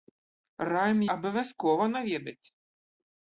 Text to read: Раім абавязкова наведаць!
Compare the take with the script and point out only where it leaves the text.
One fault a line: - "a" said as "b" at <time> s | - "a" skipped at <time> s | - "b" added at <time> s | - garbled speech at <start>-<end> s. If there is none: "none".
none